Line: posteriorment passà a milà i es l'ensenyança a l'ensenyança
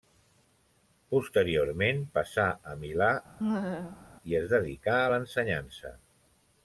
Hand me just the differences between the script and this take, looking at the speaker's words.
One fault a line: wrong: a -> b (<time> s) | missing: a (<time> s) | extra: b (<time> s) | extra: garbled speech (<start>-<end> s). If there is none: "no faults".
wrong: l'ensenyança -> dedicà (4.5 s)